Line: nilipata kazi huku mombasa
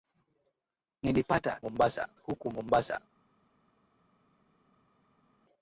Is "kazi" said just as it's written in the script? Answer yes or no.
no